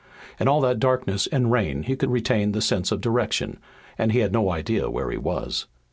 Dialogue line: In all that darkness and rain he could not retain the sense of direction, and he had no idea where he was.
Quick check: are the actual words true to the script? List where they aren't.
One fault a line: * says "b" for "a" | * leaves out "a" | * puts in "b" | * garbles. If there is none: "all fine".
* leaves out "not"